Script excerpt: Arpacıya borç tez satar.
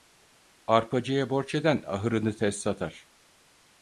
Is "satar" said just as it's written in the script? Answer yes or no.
yes